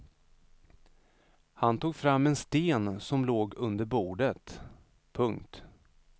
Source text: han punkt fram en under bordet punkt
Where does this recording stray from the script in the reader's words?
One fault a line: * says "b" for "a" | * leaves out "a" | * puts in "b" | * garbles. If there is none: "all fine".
* says "tog" for "punkt"
* puts in "sten som låg"